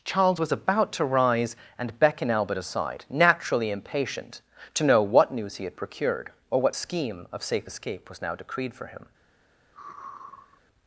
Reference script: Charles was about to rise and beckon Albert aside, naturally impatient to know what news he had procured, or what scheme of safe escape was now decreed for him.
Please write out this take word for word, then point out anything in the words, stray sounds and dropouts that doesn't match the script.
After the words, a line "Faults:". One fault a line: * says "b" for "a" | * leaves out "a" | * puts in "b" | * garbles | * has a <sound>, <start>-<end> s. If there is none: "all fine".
Charles was about to rise and beckon Albert aside, naturally impatient to know what news he had procured, or what scheme of safe escape was now decreed for him.
Faults:
* has a sigh, 9.7-10.6 s